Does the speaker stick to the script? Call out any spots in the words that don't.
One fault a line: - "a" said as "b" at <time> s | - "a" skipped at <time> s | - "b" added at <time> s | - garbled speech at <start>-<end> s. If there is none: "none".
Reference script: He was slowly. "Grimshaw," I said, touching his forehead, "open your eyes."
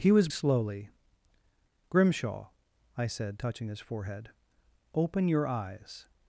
none